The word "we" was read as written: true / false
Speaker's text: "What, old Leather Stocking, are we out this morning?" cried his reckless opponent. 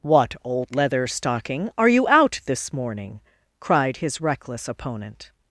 false